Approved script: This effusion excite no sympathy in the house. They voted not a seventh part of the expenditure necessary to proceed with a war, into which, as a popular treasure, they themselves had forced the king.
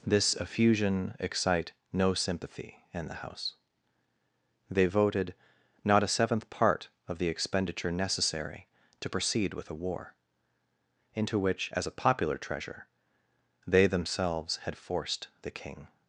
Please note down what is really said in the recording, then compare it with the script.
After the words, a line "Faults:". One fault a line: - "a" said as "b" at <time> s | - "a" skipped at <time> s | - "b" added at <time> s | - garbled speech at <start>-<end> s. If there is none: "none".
This effusion excite no sympathy in the house. They voted not a seventh part of the expenditure necessary to proceed with a war, into which, as a popular treasure, they themselves had forced the king.
Faults:
none